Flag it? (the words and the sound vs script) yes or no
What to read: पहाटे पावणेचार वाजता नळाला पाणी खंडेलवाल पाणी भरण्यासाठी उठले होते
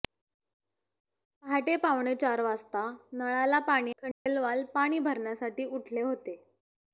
yes